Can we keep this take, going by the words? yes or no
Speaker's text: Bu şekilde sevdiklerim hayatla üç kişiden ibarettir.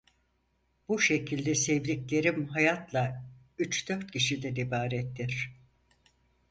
no